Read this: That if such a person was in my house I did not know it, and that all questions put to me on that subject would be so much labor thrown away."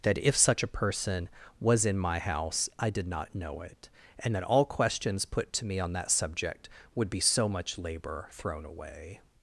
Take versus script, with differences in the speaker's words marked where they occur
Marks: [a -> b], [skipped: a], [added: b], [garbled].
That if such a person was in my house I did not know it, and that all questions put to me on that subject would be so much labor thrown away."